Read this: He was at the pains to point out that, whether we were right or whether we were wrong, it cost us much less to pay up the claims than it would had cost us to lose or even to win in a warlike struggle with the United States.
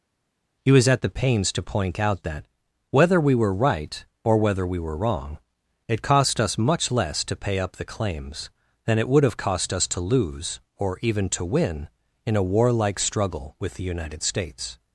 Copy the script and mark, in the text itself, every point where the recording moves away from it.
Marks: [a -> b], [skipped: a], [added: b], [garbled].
He was at the pains to point out that, whether we were right or whether we were wrong, it cost us much less to pay up the claims than it would [had -> have] cost us to lose or even to win in a warlike struggle with the United States.